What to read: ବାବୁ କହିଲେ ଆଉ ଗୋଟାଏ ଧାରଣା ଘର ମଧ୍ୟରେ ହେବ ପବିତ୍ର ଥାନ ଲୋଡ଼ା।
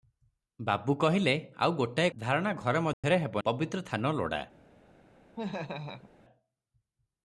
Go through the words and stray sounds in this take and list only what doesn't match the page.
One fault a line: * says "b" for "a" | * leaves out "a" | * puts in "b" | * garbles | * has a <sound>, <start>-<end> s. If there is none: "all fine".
* has a dropout, 2.9-3.0 s
* has a laugh, 5.4-6.1 s